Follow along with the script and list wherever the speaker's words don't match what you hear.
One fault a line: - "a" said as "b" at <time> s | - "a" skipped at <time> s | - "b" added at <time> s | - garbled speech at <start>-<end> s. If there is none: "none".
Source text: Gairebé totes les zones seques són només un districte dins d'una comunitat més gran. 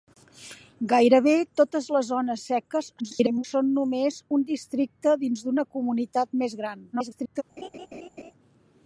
- garbled speech at 3.0-3.4 s
- garbled speech at 6.9-7.4 s